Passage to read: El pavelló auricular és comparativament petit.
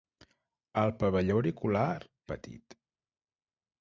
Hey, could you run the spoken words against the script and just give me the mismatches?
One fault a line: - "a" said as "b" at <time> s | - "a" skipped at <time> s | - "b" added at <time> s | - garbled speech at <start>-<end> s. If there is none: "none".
- "és comparativament" skipped at 1.9 s